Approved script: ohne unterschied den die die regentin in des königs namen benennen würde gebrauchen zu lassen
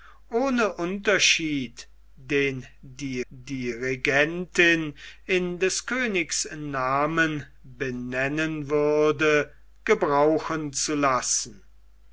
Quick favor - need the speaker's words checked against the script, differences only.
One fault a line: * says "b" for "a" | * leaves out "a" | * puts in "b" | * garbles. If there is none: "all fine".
all fine